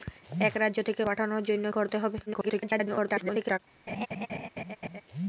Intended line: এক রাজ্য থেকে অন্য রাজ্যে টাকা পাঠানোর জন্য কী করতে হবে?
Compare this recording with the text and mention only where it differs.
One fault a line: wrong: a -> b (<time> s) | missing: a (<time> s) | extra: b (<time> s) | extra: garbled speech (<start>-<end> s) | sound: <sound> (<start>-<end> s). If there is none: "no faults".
missing: অন্য রাজ্যে টাকা (1.0 s)
missing: কী (1.7 s)
extra: garbled speech (2.3-3.6 s)
sound: laugh (3.9-5.0 s)